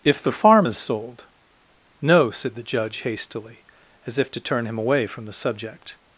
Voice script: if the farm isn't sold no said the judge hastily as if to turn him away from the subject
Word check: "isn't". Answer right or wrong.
wrong